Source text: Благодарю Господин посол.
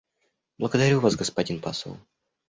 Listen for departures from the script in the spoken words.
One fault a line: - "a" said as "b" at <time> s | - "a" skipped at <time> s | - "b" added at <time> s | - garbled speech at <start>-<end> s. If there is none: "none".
- "Вас" added at 1.0 s